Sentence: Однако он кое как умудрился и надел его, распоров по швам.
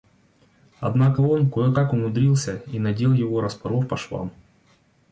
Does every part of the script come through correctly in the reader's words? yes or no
yes